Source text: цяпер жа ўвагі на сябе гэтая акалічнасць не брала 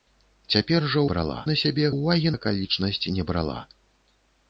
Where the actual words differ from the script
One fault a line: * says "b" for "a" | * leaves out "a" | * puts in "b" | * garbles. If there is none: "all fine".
* says "брала" for "ўвагі"
* says "ўвагі" for "гэтая"